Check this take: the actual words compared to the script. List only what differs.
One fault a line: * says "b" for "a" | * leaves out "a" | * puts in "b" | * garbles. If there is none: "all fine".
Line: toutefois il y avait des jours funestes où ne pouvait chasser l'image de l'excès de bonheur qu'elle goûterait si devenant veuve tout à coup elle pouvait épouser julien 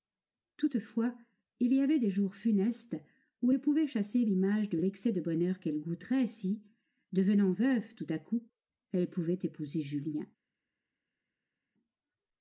all fine